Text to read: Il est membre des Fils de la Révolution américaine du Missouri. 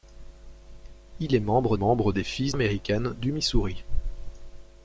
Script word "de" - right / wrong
wrong